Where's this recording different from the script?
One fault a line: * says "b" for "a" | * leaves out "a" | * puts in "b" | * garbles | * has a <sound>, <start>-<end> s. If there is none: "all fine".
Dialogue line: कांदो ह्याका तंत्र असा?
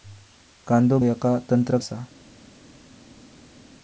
all fine